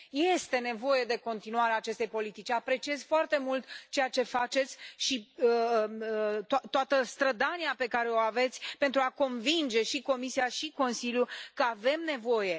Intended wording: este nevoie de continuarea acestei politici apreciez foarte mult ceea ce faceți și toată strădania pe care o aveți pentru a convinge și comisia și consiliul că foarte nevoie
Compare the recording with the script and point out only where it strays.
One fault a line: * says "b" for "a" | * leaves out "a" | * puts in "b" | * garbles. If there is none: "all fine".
* says "avem" for "foarte"